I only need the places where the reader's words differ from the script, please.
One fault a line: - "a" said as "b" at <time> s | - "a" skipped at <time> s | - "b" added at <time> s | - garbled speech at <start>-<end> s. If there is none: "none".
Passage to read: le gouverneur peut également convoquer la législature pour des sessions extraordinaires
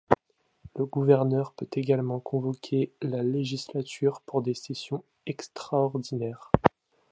none